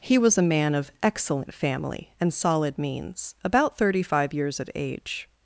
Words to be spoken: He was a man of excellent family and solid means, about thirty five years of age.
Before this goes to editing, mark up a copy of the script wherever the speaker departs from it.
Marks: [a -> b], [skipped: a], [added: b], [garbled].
He was a man of excellent family and solid means, about thirty five years of age.